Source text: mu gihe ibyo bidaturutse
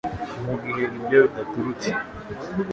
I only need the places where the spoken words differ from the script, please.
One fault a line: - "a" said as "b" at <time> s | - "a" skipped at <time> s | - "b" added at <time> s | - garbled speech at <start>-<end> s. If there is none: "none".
none